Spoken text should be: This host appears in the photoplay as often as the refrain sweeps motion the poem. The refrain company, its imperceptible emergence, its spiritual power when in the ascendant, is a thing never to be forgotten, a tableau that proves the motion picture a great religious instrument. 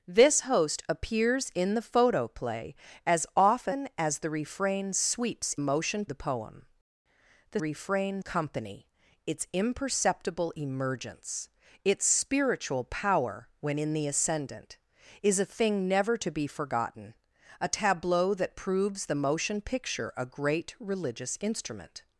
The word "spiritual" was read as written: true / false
true